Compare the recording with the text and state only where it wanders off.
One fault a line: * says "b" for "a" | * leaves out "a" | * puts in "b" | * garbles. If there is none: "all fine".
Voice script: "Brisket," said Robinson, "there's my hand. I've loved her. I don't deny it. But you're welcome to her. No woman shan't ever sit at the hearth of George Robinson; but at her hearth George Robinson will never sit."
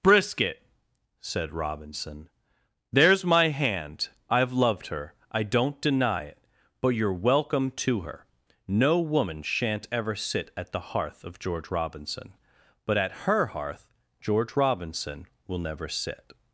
all fine